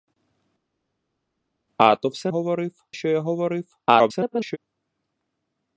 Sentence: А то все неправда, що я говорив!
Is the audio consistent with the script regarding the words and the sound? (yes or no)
no